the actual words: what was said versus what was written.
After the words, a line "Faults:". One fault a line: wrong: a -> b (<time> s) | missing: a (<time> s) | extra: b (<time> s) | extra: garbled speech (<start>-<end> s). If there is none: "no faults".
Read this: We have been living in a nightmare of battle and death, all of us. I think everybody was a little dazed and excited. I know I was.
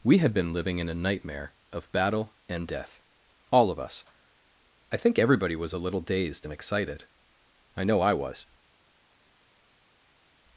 We had been living in a nightmare of battle and death, all of us. I think everybody was a little dazed and excited. I know I was.
Faults:
wrong: have -> had (0.2 s)